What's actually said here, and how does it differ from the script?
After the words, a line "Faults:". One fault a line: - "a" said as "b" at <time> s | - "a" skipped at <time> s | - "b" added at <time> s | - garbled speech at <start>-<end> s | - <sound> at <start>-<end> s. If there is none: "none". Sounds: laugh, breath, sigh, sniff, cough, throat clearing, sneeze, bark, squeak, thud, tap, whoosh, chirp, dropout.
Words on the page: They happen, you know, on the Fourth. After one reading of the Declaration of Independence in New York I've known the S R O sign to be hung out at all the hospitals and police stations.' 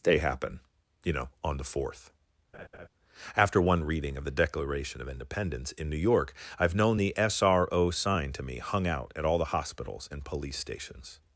They happen, you know, on the Fourth. After one reading of the Declaration of Independence in New York I've known the S R O sign to me hung out at all the hospitals and police stations.'
Faults:
- laugh at 2.5-2.9 s
- "be" said as "me" at 8.4 s